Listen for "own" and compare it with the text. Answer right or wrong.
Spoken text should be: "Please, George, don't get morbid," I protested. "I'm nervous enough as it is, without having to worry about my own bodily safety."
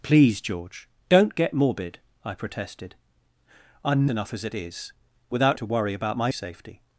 wrong